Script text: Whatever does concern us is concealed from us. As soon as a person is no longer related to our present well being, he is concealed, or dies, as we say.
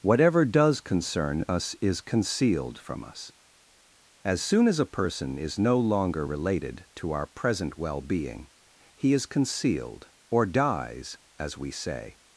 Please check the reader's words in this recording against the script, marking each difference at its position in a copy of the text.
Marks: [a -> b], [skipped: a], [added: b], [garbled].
Whatever does concern us is concealed from us. As soon as a person is no longer related to our present well being, he is concealed, or dies, as we say.